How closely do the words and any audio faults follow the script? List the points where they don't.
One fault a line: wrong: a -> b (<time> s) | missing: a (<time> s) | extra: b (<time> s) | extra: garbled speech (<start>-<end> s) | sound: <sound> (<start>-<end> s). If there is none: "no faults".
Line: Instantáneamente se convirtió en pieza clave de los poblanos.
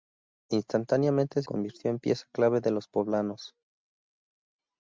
missing: se (1.4 s)